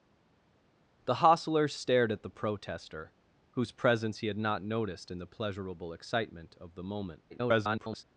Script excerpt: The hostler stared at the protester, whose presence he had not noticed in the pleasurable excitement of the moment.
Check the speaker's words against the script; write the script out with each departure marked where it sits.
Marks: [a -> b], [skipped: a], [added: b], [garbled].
The hostler stared at the protester, whose presence he had not noticed in the pleasurable excitement of the moment. [garbled]